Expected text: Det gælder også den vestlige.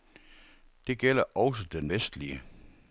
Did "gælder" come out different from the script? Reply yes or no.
no